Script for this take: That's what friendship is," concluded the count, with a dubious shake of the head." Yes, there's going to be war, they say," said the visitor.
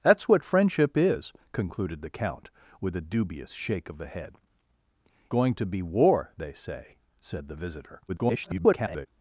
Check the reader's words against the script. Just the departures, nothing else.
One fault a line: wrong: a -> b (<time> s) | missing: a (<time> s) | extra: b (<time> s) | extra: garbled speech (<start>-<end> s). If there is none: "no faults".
missing: Yes there's (4.3 s)
extra: garbled speech (8.1-9.1 s)